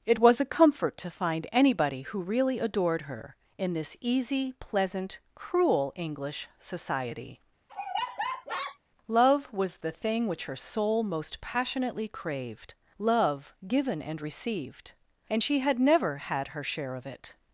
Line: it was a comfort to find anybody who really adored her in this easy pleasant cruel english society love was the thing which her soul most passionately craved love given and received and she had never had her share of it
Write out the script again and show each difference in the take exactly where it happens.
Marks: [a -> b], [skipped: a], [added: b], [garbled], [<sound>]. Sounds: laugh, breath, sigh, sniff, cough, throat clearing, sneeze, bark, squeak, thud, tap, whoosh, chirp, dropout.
it was a comfort to find anybody who really adored her in this easy pleasant cruel english society [laugh] love was the thing which her soul most passionately craved love given and received and she had never had her share of it